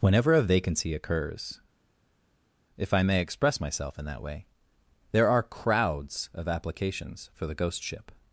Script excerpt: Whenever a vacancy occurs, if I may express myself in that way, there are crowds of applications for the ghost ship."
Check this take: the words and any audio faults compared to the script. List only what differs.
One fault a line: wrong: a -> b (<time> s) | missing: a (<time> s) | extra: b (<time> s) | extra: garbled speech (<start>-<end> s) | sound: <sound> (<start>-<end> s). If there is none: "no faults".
no faults